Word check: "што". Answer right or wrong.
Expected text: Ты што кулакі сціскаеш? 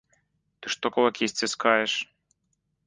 right